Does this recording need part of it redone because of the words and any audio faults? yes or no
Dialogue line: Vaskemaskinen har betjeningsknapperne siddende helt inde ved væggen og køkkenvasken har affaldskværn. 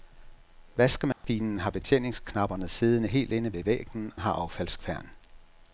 yes